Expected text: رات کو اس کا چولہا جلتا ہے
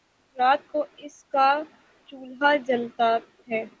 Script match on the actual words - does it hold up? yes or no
yes